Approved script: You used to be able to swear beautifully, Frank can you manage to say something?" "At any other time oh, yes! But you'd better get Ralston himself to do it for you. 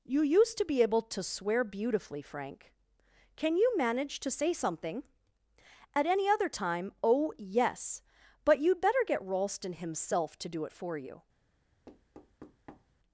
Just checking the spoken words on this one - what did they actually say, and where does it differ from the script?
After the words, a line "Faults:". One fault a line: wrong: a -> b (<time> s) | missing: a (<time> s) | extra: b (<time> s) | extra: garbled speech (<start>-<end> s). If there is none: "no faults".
You used to be able to swear beautifully, Frank can you manage to say something?" "At any other time oh, yes! But you'd better get Ralston himself to do it for you.
Faults:
no faults